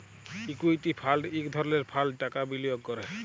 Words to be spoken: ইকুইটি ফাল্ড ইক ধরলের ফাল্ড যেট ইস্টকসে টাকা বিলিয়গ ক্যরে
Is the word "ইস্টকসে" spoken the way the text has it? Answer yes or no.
no